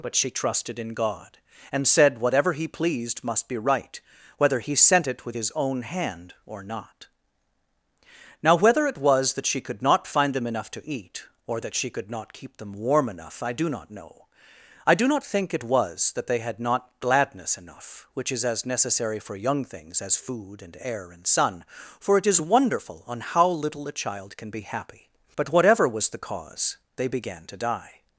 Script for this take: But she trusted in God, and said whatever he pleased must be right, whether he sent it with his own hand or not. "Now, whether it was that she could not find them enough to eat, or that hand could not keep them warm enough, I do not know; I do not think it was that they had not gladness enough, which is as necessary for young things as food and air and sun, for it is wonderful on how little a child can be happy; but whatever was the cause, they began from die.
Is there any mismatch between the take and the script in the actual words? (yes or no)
yes